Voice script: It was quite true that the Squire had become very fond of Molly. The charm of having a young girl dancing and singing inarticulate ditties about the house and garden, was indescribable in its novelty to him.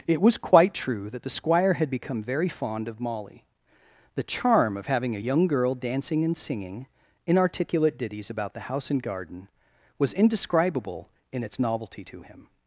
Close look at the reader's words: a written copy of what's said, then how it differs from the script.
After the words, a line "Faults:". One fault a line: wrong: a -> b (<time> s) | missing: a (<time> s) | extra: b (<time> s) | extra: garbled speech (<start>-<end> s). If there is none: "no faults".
It was quite true that the Squire had become very fond of Molly. The charm of having a young girl dancing and singing inarticulate ditties about the house and garden, was indescribable in its novelty to him.
Faults:
no faults